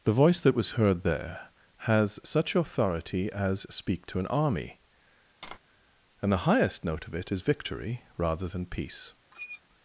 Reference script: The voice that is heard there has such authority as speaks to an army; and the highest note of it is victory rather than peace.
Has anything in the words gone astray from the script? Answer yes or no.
yes